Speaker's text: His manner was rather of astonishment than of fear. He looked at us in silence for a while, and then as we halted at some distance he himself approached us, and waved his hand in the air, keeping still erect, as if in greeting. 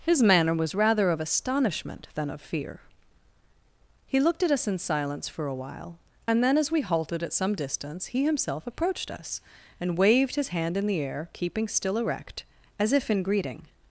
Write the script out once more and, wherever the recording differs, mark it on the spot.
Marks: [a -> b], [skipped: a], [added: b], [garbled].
His manner was rather of astonishment than of fear. He looked at us in silence for a while, and then as we halted at some distance he himself approached us, and waved his hand in the air, keeping still erect, as if in greeting.